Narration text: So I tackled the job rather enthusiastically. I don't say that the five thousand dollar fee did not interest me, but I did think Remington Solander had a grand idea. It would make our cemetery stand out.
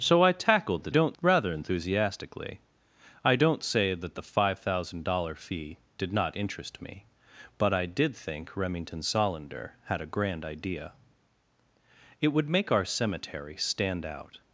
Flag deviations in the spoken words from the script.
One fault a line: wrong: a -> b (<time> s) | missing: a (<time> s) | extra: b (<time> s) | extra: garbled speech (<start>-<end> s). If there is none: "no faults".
wrong: job -> don't (0.9 s)